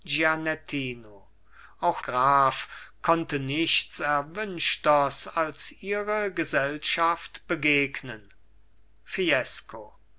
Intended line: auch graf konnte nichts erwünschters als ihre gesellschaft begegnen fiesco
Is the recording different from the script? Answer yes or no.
no